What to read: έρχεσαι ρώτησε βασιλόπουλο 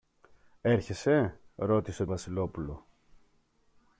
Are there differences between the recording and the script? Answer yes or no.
no